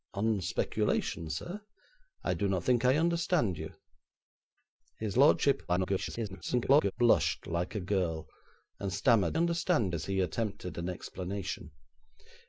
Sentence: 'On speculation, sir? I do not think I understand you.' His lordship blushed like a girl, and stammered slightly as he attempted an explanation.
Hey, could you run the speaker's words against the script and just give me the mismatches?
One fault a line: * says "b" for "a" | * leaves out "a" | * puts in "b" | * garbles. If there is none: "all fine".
* garbles
* says "understand" for "slightly"